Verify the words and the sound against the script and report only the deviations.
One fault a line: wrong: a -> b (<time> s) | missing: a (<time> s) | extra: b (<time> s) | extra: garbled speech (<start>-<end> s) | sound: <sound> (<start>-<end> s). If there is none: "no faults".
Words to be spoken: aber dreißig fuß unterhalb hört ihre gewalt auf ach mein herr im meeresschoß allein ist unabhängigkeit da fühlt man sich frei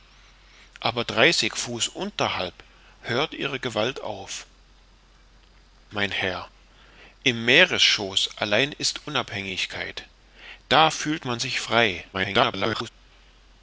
missing: ach (4.5 s)
extra: garbled speech (12.1-12.9 s)